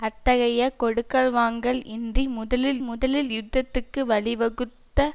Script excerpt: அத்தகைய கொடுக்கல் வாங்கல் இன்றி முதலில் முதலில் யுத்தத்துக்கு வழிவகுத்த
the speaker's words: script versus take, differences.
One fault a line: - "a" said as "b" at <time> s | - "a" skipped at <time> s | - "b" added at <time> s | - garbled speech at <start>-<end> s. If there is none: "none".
none